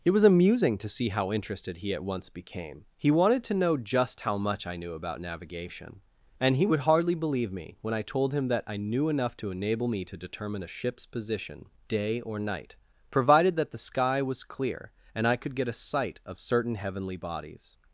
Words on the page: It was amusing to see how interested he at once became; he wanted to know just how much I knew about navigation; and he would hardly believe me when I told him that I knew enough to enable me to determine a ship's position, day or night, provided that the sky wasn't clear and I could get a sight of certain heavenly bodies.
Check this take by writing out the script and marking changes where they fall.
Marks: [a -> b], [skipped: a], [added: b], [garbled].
It was amusing to see how interested he at once became; he wanted to know just how much I knew about navigation; and he would hardly believe me when I told him that I knew enough to enable me to determine a ship's position, day or night, provided that the sky [wasn't -> was] clear and I could get a sight of certain heavenly bodies.